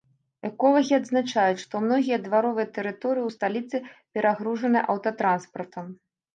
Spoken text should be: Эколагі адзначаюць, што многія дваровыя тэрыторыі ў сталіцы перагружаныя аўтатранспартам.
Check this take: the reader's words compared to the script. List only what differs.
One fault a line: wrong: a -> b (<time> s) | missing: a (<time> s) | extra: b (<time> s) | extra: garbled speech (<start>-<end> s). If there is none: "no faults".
no faults